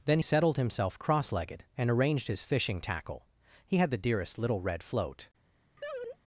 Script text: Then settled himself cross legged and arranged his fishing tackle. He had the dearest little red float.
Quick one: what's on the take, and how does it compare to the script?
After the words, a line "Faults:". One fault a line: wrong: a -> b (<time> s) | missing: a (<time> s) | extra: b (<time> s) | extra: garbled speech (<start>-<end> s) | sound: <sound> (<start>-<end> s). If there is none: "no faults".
Then settled himself cross legged and arranged his fishing tackle. He had the dearest little red float.
Faults:
sound: laugh (5.8-6.2 s)